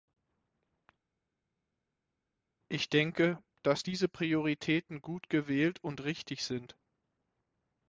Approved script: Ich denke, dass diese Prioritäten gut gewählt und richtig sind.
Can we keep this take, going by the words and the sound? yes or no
yes